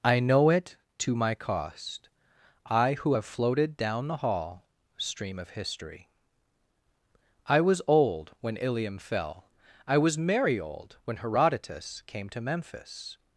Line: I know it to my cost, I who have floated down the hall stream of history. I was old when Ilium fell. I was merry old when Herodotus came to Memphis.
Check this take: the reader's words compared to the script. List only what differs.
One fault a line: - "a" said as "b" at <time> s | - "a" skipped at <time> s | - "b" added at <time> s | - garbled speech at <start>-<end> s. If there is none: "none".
none